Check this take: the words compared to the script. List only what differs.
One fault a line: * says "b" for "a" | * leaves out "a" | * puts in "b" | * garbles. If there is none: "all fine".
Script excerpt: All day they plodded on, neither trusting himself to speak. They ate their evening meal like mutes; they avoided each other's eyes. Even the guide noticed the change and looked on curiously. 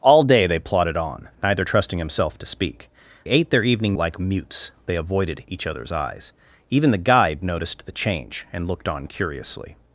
* leaves out "They"
* leaves out "meal"